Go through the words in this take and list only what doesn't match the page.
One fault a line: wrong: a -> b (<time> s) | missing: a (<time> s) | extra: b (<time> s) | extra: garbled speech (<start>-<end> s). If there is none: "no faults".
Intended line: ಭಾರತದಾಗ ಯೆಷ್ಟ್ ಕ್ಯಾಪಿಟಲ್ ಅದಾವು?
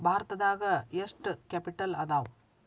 no faults